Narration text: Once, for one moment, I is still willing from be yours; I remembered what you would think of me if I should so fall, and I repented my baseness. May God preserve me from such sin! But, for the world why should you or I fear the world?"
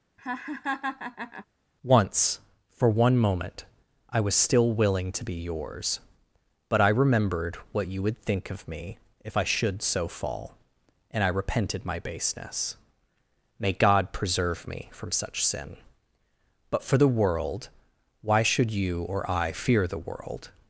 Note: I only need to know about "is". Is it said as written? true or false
false